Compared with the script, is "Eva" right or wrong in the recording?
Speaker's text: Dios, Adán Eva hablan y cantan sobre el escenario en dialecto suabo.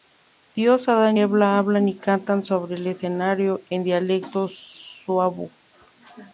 right